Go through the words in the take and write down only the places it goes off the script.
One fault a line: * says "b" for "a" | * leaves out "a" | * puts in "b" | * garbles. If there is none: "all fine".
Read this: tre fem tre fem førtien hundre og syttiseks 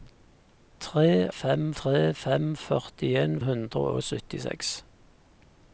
all fine